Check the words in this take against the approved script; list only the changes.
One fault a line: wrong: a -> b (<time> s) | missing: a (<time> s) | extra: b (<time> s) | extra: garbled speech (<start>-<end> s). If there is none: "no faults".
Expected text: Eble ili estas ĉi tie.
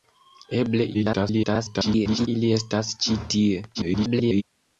extra: garbled speech (0.9-2.3 s)
extra: garbled speech (3.7-4.4 s)